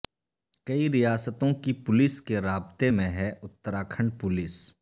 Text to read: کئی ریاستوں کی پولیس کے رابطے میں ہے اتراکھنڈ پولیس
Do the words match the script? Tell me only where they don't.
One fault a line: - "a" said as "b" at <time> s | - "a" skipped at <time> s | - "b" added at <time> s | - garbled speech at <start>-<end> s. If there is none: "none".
none